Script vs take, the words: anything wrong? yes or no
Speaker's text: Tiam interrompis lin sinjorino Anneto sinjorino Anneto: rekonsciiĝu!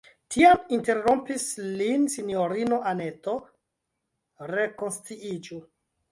yes